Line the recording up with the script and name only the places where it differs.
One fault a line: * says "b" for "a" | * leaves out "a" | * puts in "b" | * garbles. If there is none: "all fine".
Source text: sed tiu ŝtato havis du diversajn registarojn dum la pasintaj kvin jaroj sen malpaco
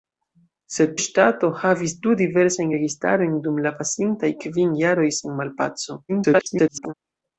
* leaves out "tiu"
* garbles